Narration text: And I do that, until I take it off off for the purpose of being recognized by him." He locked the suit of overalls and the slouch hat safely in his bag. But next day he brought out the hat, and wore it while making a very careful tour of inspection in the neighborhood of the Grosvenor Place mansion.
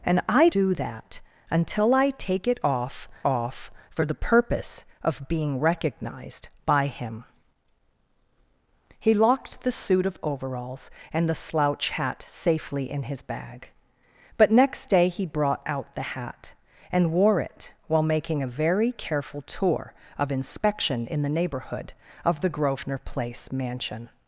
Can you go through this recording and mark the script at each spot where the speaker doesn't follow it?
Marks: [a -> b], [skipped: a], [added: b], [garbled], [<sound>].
And I do that, until I take it off off for the purpose of being recognized by him." He locked the suit of overalls and the slouch hat safely in his bag. But next day he brought out the hat, and wore it while making a very careful tour of inspection in the neighborhood of the Grosvenor Place mansion.